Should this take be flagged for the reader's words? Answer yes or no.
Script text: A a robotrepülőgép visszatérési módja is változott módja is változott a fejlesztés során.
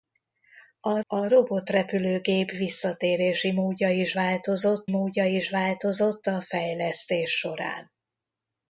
no